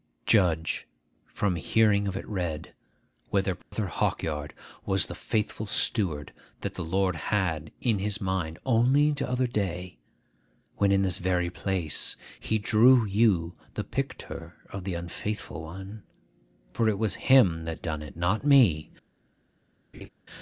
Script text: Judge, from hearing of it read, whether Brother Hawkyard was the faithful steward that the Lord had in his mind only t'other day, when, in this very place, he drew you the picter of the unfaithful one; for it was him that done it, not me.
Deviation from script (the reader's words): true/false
false